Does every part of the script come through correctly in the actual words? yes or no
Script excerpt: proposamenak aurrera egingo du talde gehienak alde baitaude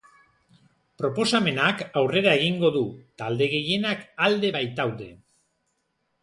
yes